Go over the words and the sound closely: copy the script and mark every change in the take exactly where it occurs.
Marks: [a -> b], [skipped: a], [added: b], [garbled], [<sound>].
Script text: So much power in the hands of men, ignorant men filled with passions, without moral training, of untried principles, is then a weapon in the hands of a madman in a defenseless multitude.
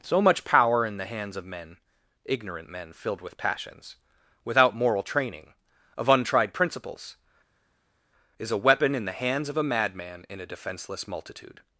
So much power in the hands of men, ignorant men filled with passions, without moral training, of untried principles, is [skipped: then] a weapon in the hands of a madman in a defenseless multitude.